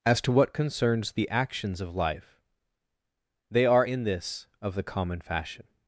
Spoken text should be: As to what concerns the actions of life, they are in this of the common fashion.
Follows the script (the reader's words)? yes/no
yes